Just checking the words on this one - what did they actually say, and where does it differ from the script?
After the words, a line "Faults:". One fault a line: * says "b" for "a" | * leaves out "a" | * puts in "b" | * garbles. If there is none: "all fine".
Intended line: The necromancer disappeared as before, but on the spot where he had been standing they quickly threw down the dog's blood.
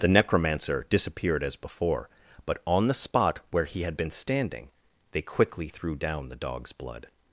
The necromancer disappeared as before, but on the spot where he had been standing they quickly threw down the dog's blood.
Faults:
all fine